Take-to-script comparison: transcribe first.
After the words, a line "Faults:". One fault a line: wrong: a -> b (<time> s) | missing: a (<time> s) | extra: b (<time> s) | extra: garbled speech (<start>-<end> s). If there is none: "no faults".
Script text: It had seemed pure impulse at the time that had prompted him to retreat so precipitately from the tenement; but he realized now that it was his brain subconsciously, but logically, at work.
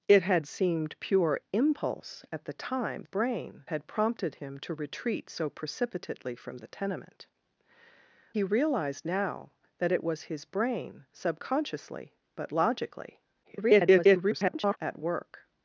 It had seemed pure impulse at the time brain had prompted him to retreat so precipitately from the tenement; he realized now that it was his brain subconsciously, but logically, [garbled] at work.
Faults:
wrong: that -> brain (3.0 s)
missing: but (7.3 s)
extra: garbled speech (13.4-14.8 s)